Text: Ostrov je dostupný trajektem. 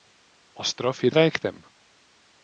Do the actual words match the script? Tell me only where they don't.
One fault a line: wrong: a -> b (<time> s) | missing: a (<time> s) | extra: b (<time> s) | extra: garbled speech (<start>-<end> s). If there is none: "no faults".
missing: dostupný (1.1 s)